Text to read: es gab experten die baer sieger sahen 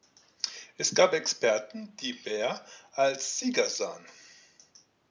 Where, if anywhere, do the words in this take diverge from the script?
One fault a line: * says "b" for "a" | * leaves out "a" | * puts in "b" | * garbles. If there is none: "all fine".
* puts in "als"